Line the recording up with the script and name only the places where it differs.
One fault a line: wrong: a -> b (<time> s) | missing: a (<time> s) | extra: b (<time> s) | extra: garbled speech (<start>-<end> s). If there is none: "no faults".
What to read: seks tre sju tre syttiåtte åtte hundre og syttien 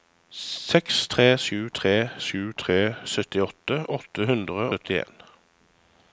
extra: sju tre (2.2 s)
missing: og (4.7 s)